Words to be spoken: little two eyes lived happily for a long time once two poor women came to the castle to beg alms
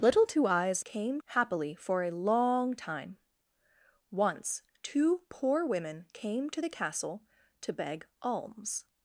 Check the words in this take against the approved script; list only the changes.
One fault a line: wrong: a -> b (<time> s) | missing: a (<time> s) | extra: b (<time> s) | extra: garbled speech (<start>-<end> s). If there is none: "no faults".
wrong: lived -> came (0.8 s)